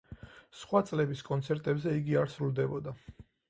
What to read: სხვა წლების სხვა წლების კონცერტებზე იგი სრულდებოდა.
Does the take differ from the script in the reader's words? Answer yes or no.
yes